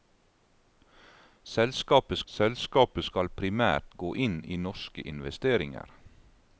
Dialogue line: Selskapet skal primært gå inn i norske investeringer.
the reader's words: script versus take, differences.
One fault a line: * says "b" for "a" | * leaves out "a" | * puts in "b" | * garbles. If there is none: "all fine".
* puts in "selskapet"